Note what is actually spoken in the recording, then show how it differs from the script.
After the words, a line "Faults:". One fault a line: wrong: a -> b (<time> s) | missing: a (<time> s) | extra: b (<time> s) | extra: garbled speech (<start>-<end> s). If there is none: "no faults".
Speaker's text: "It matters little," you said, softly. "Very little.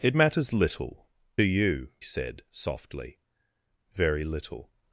"It matters little," you said, softly. "Very little.
Faults:
no faults